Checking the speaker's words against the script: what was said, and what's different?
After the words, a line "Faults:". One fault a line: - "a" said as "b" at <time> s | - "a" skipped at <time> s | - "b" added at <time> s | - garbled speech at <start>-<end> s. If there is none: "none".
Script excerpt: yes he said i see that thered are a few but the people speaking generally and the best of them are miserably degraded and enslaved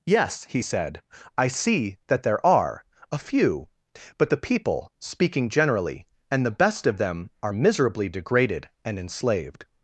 yes he said i see that there are a few but the people speaking generally and the best of them are miserably degraded and enslaved
Faults:
- "thered" said as "there" at 2.2 s